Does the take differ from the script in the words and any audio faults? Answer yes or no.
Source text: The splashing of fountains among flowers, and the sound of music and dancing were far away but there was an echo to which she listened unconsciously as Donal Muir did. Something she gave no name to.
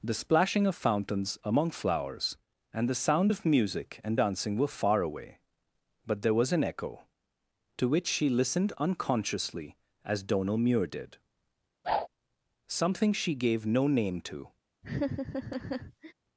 yes